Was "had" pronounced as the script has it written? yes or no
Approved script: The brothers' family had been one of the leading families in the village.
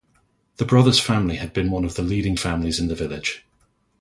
yes